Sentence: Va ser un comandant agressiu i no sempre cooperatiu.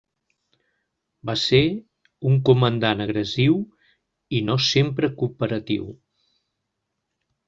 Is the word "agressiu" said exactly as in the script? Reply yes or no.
yes